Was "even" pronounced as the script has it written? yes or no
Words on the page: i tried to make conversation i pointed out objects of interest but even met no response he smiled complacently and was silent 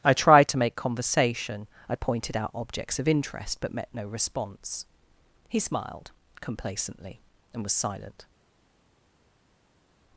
no